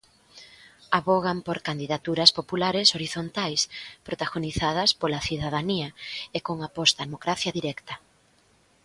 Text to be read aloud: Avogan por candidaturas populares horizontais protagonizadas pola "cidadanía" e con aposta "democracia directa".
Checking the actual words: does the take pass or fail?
pass